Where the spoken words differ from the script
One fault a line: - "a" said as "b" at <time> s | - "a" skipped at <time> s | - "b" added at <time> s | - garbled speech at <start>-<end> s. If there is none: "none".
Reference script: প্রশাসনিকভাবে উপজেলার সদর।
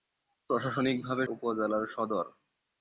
none